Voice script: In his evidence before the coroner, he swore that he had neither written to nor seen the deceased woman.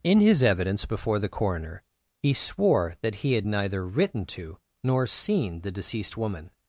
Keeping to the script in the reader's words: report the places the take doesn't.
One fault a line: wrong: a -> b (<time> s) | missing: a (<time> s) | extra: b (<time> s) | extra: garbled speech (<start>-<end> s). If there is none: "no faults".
no faults